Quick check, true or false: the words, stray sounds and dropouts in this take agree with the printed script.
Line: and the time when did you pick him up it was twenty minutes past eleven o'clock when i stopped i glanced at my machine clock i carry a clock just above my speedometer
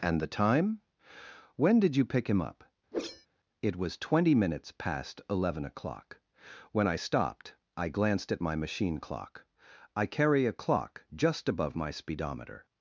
false